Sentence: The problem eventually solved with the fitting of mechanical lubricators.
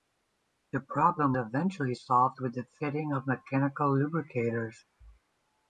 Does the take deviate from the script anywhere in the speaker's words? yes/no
no